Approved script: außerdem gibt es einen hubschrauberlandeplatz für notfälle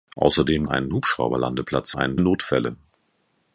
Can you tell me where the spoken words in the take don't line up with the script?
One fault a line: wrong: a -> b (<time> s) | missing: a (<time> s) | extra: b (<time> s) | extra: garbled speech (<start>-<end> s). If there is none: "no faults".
missing: gibt es (0.7 s)
wrong: für -> einen (1.9 s)